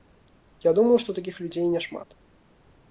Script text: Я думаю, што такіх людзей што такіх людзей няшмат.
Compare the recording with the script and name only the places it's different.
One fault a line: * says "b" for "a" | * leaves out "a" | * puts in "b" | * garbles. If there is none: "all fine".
* leaves out "што такіх людзей"